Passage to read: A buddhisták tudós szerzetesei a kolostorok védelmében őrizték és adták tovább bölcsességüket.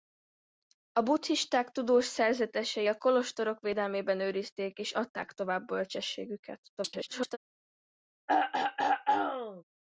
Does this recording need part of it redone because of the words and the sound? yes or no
yes